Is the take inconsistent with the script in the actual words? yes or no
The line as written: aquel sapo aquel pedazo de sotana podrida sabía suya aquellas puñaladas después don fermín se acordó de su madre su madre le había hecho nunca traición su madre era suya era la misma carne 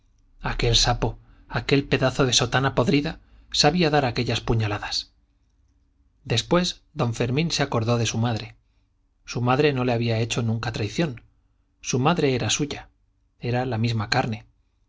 yes